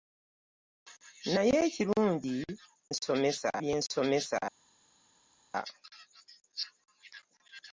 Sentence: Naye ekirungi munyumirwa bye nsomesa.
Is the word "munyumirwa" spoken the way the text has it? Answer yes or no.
no